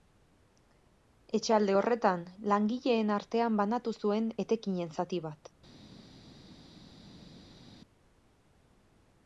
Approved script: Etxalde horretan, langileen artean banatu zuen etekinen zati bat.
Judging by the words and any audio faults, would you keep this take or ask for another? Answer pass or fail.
pass